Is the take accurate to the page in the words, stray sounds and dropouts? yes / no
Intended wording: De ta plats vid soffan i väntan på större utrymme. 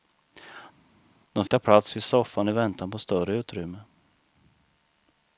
yes